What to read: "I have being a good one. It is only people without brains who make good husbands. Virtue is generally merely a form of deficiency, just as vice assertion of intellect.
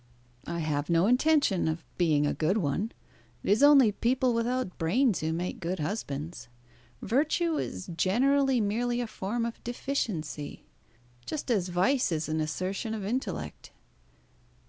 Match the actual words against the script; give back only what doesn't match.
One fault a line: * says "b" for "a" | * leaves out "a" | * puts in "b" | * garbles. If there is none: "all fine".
* puts in "no intention of"
* puts in "is an"